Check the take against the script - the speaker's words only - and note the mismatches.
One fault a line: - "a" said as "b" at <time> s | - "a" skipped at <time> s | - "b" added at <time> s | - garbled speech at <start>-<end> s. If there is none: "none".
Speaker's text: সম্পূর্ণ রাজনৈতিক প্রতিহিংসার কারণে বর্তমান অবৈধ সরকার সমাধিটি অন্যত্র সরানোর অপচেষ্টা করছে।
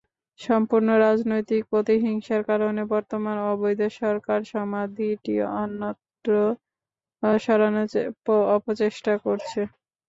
none